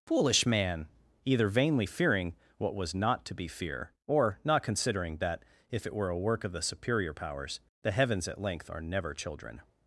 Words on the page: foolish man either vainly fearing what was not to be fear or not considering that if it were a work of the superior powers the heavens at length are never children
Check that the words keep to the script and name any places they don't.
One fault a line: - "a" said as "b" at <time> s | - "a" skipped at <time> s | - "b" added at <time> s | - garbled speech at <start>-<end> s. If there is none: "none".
none